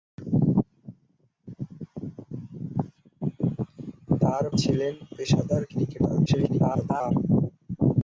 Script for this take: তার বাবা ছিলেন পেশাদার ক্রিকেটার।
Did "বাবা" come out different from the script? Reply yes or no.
yes